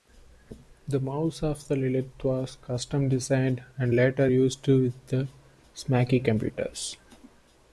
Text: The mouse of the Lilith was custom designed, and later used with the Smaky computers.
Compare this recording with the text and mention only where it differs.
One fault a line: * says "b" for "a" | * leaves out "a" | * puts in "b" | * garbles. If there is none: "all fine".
all fine